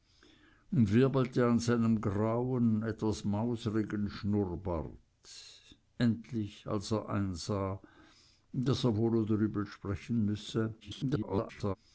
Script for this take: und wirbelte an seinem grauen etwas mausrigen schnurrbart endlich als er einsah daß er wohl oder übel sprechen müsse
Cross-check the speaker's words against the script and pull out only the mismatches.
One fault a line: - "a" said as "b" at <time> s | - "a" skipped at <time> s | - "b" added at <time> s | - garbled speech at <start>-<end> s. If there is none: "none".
- garbled speech at 10.8-11.8 s